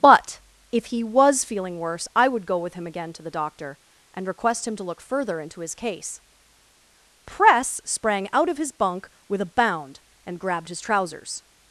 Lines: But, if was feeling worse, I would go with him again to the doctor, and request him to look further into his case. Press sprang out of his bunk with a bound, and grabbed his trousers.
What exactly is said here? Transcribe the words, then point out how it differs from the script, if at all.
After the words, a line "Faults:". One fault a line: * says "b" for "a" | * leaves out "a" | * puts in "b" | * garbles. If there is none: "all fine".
But, if he was feeling worse, I would go with him again to the doctor, and request him to look further into his case. Press sprang out of his bunk with a bound, and grabbed his trousers.
Faults:
* puts in "he"